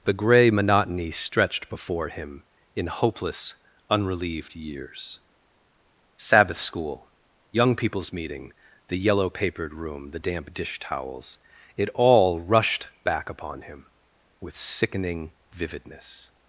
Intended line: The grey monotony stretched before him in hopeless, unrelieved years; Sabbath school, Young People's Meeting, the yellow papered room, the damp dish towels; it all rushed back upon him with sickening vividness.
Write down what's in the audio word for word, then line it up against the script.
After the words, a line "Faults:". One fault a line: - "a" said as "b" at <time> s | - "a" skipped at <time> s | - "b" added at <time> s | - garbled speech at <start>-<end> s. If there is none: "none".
The grey monotony stretched before him in hopeless, unrelieved years; Sabbath school, Young People's Meeting, the yellow papered room, the damp dish towels; it all rushed back upon him with sickening vividness.
Faults:
none